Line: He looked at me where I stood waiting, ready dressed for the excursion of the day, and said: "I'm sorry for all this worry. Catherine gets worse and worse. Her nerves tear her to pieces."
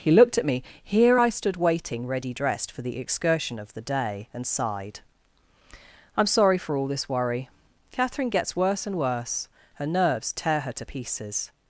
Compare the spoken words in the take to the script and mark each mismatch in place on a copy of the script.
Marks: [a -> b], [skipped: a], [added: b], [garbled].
He looked at me [where -> here] I stood waiting, ready dressed for the excursion of the day, and [said: -> sighed] "I'm sorry for all this worry. Catherine gets worse and worse. Her nerves tear her to pieces."